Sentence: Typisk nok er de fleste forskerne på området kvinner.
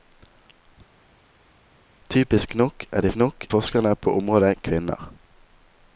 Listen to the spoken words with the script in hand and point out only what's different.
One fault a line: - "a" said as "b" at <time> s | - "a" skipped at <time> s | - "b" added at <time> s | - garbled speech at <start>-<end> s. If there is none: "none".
- "fleste" said as "nok" at 3.1 s